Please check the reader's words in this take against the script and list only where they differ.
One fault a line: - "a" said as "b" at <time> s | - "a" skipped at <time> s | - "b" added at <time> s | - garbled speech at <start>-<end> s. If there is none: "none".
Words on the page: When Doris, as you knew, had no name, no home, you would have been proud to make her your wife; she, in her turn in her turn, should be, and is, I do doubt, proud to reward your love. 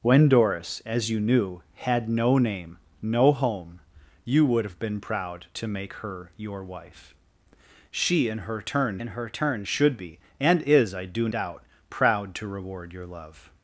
none